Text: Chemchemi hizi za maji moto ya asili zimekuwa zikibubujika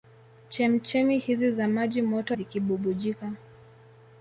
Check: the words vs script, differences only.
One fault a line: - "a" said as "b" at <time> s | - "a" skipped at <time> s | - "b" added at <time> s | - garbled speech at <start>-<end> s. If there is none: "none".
- "ya asili zimekuwa" skipped at 2.4 s